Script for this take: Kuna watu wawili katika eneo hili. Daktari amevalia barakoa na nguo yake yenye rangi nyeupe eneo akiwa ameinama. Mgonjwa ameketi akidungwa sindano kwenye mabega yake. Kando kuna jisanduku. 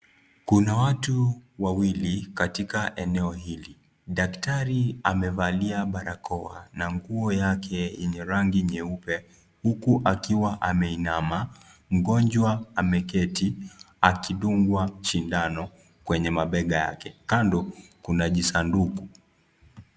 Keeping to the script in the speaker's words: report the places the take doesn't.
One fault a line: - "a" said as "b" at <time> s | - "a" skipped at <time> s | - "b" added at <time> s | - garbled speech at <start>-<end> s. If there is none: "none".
- "eneo" said as "huku" at 9.6 s